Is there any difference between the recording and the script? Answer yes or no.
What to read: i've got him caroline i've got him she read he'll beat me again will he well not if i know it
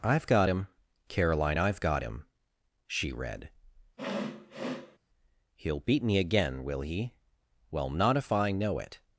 no